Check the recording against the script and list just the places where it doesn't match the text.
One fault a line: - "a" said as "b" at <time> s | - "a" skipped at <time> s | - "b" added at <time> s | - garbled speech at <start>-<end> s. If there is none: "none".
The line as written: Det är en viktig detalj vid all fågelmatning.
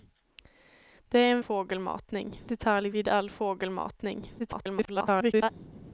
- "viktig" said as "fågelmatning" at 1.4 s
- garbled speech at 4.4-5.5 s